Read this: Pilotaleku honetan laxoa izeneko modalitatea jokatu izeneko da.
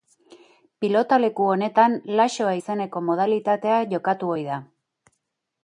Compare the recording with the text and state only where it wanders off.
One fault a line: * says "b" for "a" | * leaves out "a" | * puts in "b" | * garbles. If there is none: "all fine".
* says "ohi" for "izeneko"